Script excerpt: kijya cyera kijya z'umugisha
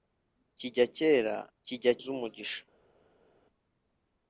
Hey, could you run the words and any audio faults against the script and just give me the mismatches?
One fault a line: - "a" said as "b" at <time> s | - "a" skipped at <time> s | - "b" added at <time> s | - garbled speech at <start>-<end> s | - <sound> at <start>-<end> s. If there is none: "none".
none